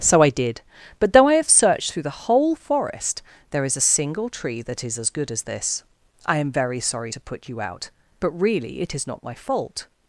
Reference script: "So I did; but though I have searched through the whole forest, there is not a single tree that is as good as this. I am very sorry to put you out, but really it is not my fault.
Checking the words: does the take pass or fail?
fail